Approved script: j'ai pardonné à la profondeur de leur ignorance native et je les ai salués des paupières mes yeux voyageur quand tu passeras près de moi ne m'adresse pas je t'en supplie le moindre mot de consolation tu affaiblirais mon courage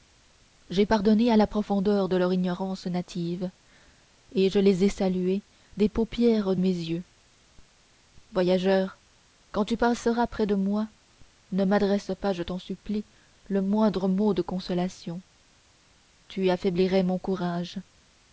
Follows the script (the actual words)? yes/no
yes